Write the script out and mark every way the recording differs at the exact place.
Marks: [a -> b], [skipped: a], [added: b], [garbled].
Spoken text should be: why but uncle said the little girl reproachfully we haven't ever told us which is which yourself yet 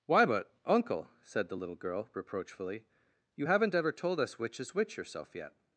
why but uncle said the little girl reproachfully [we -> you] haven't ever told us which is which yourself yet